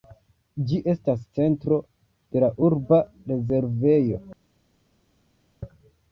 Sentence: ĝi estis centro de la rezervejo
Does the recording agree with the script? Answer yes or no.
no